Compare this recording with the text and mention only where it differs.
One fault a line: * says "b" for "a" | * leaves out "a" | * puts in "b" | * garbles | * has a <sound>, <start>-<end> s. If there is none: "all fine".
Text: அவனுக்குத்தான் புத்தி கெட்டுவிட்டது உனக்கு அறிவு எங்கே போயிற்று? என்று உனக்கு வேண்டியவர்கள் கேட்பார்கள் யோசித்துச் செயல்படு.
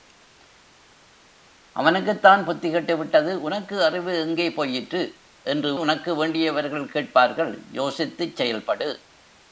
all fine